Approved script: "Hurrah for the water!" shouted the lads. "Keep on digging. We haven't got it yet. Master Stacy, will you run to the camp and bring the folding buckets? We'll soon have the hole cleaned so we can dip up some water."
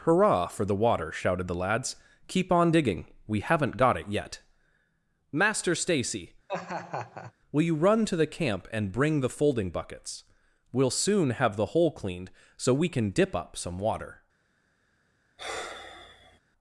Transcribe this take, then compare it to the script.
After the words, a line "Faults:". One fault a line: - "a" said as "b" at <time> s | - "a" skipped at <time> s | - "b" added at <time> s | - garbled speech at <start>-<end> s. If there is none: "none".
"Hurrah for the water!" shouted the lads. "Keep on digging. We haven't got it yet. Master Stacy, will you run to the camp and bring the folding buckets? We'll soon have the hole cleaned so we can dip up some water."
Faults:
none